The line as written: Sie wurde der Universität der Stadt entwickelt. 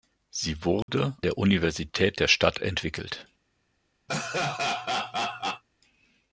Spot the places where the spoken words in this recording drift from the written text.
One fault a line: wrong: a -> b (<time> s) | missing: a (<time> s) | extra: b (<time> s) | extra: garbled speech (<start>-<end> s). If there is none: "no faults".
no faults